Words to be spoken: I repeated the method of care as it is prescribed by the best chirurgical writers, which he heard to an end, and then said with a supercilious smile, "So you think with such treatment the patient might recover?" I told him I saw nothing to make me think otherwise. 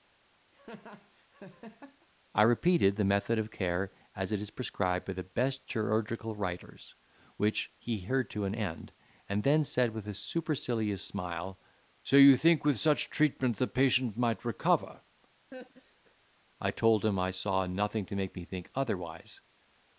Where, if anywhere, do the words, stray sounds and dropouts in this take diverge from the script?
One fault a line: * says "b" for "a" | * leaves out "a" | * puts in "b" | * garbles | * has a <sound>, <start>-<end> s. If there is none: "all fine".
* has a laugh, 0.5-2.1 s
* has a laugh, 15.5-16.2 s